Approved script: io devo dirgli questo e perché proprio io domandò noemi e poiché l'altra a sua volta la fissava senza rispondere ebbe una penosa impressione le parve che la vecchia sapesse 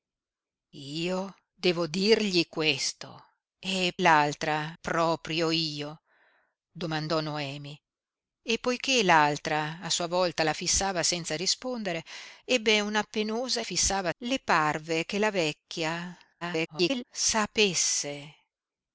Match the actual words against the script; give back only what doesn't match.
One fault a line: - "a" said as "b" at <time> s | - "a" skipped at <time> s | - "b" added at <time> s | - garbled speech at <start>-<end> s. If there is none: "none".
- "perché" said as "l'altra" at 4.0 s
- "impressione" said as "fissava" at 13.6 s
- garbled speech at 16.4-17.1 s